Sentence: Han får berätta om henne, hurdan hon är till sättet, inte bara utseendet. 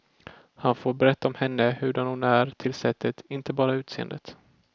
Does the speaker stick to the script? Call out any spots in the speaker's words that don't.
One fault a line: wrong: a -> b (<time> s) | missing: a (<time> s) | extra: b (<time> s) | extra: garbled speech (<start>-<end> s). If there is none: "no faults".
no faults